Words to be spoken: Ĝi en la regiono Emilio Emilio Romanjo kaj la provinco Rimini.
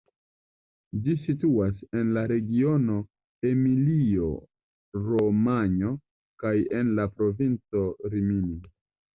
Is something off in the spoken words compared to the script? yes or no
yes